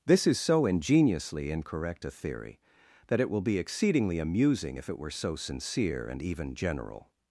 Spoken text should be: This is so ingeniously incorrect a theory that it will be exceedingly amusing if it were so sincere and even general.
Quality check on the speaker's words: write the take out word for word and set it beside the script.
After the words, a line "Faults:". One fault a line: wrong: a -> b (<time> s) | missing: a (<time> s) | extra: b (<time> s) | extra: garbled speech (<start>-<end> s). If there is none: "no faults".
This is so ingeniously incorrect a theory that it will be exceedingly amusing if it were so sincere and even general.
Faults:
no faults